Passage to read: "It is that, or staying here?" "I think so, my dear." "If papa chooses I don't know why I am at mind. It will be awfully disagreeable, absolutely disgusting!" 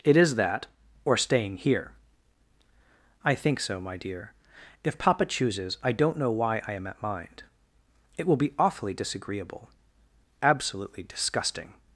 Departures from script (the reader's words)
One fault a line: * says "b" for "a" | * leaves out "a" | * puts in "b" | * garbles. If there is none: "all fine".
all fine